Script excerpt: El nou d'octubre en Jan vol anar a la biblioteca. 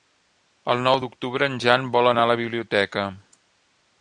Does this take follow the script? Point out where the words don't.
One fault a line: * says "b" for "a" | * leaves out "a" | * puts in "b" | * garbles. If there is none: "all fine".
all fine